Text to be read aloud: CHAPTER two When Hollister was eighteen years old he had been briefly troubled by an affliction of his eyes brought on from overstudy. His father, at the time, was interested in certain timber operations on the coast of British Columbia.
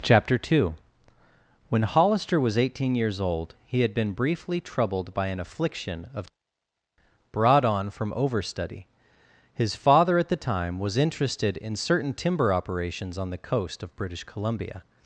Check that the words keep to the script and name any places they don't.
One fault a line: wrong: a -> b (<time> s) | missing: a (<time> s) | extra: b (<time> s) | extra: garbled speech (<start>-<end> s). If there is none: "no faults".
missing: his eyes (6.2 s)